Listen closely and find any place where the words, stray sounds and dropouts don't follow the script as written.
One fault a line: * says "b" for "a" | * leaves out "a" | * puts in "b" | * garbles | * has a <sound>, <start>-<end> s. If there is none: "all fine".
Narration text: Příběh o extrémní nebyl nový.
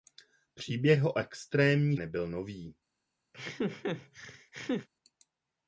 * has a laugh, 3.3-4.9 s